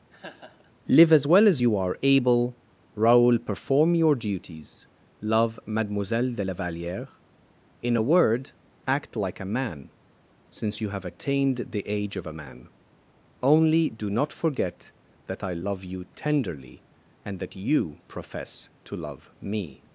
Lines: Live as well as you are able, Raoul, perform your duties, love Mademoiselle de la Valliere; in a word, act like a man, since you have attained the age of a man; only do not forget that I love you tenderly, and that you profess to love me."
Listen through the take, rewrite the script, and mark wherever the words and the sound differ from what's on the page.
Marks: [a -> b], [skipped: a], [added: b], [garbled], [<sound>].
[laugh] Live as well as you are able, Raoul, perform your duties, love Mademoiselle de la Valliere; in a word, act like a man, since you have attained the age of a man; only do not forget that I love you tenderly, and that you profess to love me."